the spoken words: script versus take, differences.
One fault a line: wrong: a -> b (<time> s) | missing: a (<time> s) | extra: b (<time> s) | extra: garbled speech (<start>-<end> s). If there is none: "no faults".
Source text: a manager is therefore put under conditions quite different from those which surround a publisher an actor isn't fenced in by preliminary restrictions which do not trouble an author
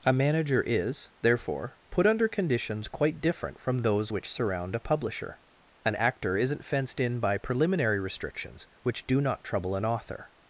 no faults